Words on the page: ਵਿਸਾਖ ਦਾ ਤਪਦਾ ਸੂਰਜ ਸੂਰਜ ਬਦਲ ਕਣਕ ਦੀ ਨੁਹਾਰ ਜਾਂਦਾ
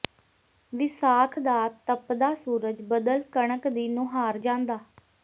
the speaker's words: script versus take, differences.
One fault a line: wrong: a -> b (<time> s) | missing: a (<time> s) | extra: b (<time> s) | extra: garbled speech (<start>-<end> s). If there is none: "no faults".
missing: ਸੂਰਜ (2.8 s)